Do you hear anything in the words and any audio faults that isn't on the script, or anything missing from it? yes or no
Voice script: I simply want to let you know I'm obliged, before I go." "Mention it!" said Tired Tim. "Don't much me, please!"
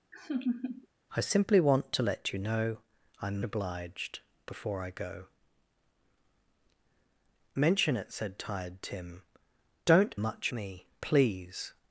yes